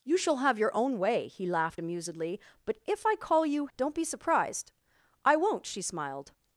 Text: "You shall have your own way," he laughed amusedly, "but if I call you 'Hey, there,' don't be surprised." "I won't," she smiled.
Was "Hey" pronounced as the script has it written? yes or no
no